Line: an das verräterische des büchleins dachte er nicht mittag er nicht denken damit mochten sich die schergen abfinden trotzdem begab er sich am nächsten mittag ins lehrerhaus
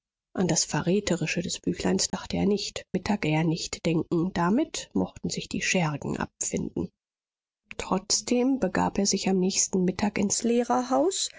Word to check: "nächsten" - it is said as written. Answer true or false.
true